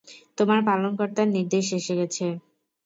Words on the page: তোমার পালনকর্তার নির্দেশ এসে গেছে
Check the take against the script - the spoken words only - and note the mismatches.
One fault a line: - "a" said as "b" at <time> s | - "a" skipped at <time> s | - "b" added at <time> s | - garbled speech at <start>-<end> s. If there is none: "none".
none